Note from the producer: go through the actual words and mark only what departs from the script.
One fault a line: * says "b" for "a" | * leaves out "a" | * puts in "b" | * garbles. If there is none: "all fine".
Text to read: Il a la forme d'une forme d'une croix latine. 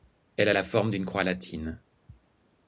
* says "Elle" for "Il"
* leaves out "forme d'une"